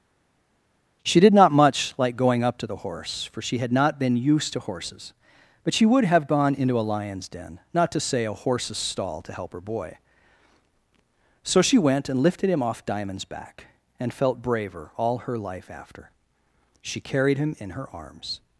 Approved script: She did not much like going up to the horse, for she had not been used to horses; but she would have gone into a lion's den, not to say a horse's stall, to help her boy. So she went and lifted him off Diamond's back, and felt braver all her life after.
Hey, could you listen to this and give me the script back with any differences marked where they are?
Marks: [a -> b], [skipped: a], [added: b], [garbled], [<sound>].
She did not much like going up to the horse, for she had not been used to horses; but she would have gone into a lion's den, not to say a horse's stall, to help her boy. So she went and lifted him off Diamond's back, and felt braver all her life after. [added: She carried him in her arms]